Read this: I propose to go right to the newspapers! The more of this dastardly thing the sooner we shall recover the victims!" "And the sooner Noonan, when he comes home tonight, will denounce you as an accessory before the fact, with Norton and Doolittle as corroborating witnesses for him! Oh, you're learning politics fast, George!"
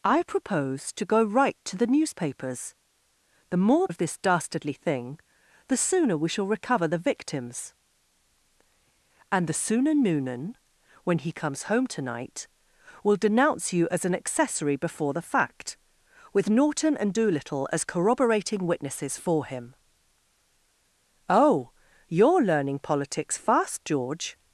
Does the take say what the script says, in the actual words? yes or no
yes